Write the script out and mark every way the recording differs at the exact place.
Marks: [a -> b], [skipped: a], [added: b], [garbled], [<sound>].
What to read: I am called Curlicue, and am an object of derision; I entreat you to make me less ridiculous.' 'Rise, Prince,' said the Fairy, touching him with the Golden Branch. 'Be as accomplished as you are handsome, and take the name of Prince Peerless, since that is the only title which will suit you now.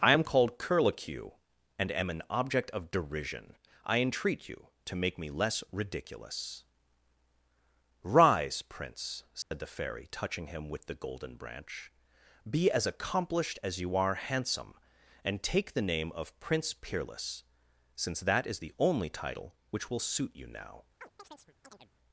I am called Curlicue, and am an object of derision; I entreat you to make me less ridiculous.' 'Rise, Prince,' said [dropout] the Fairy, touching him with the Golden Branch. 'Be as accomplished as you are handsome, and take the name of Prince Peerless, since that is the only title which will suit you now. [chirp]